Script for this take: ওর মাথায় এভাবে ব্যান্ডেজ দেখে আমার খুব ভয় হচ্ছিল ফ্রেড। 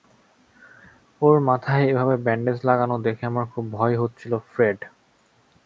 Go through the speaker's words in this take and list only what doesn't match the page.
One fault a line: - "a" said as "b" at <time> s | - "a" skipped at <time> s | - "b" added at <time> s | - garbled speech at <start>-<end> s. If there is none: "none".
- "লাগানো" added at 2.6 s